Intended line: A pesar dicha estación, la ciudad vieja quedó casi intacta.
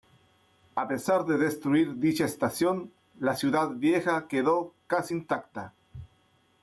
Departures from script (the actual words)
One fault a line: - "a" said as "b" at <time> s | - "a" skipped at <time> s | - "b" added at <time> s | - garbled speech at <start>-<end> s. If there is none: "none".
- "de destruir" added at 1.2 s